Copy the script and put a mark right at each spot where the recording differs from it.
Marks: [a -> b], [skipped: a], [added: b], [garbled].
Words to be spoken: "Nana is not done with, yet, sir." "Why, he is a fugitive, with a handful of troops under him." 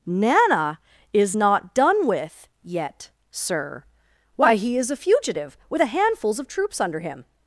"Nana is not done with, yet, sir." "Why, he is a fugitive, with a [handful -> handfuls] of troops under him."